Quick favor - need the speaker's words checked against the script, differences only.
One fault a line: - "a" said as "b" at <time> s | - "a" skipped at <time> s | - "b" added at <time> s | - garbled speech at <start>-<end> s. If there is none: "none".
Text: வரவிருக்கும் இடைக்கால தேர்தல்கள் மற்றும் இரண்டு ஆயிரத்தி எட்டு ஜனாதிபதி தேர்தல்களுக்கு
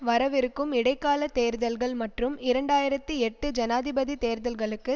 none